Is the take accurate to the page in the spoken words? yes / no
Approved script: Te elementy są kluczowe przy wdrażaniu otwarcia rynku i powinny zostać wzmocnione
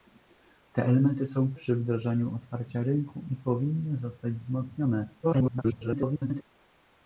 no